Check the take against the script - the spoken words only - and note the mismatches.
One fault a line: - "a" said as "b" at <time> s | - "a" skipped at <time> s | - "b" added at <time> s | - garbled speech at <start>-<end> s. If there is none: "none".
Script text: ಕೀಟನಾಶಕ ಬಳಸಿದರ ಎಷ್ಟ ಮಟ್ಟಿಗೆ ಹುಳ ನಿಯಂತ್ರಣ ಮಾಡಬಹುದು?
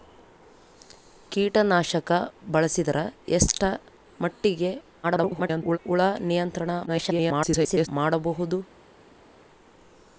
- garbled speech at 5.0-5.8 s
- garbled speech at 6.9-7.9 s